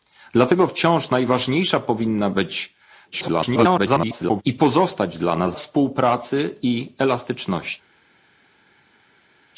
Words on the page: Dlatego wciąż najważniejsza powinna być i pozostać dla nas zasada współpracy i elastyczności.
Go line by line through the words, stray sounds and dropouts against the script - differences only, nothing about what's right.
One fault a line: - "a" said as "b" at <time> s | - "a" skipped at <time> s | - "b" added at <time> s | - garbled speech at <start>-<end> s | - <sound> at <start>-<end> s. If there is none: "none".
- garbled speech at 3.1-4.4 s
- "zasada" skipped at 5.6 s